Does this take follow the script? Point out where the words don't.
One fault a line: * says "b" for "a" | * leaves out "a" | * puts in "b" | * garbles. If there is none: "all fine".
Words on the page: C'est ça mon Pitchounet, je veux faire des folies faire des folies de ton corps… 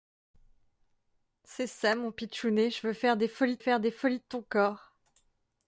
all fine